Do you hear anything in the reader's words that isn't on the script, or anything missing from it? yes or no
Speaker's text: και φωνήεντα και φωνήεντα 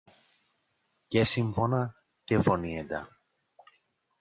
yes